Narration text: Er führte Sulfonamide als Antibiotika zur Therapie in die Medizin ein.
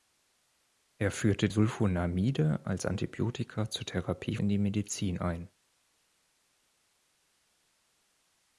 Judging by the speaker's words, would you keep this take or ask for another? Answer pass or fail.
pass